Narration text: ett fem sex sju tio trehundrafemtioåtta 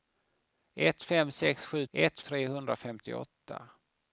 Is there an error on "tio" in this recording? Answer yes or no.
yes